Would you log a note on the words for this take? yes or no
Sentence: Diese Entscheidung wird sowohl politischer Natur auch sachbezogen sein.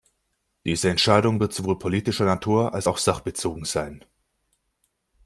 yes